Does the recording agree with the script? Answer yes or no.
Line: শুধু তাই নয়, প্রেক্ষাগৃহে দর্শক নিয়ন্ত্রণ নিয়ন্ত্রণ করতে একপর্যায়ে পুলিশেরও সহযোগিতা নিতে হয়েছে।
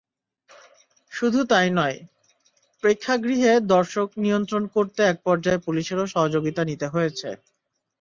no